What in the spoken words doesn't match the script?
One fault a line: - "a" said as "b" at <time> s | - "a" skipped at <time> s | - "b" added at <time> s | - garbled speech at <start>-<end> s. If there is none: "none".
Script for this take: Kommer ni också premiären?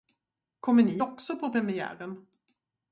- "på" added at 1.4 s